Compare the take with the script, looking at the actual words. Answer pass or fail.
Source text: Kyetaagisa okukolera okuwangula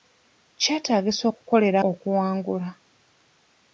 pass